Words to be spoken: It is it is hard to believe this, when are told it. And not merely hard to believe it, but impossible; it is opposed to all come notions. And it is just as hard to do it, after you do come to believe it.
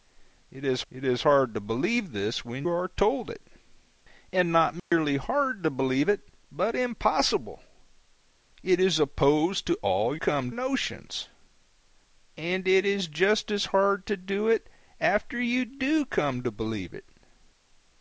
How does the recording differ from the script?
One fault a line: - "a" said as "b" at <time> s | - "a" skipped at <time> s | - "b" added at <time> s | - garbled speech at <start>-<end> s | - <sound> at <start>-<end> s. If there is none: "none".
- dropout at 4.8-4.9 s